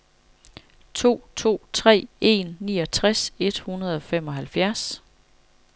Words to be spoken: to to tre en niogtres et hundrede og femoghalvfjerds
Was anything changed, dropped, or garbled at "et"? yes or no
no